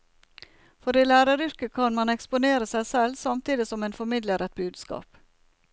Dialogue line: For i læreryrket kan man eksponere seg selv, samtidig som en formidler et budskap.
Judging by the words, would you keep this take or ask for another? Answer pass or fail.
pass